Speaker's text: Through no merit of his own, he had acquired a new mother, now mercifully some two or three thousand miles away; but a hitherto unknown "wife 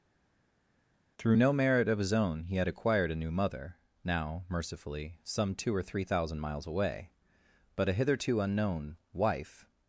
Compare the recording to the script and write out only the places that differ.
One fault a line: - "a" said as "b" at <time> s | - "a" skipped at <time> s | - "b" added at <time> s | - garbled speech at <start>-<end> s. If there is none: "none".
none